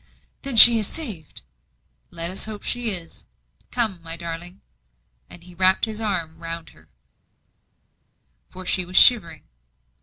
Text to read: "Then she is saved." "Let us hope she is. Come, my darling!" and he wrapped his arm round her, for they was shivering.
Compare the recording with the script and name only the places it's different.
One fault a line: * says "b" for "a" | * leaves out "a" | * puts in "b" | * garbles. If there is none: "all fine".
* says "she" for "they"